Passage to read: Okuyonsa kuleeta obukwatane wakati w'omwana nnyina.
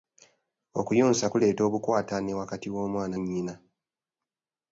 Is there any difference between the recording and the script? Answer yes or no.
no